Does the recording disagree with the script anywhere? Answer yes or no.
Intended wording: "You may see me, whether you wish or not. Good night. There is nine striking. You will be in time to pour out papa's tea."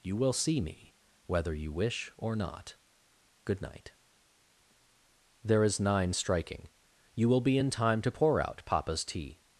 yes